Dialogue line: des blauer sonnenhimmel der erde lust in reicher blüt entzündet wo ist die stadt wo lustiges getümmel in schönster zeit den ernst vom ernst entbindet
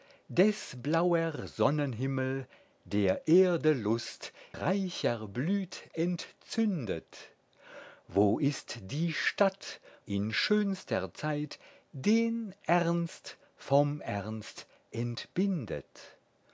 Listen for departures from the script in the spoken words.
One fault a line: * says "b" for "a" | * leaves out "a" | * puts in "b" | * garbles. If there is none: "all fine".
* leaves out "in"
* leaves out "wo lustiges getümmel"